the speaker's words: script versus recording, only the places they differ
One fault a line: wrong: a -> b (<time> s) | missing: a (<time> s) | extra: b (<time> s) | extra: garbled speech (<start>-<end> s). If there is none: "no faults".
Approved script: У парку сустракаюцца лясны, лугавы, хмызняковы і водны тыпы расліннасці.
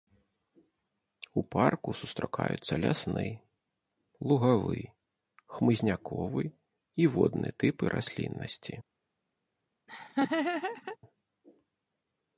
no faults